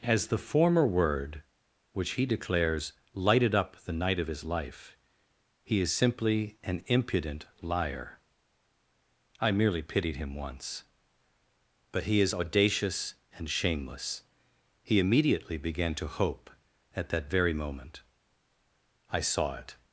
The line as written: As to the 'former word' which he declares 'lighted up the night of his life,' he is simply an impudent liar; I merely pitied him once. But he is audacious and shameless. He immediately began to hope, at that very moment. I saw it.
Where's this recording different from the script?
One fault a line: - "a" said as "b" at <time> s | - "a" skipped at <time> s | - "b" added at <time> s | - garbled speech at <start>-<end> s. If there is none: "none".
- "to" skipped at 0.3 s